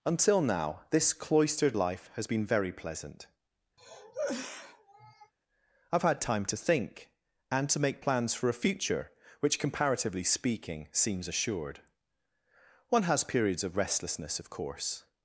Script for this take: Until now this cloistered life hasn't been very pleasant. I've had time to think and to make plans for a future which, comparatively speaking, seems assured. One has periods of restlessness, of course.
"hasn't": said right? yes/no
no